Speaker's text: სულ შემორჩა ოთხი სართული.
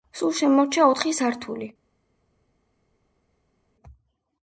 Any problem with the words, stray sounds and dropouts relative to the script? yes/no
no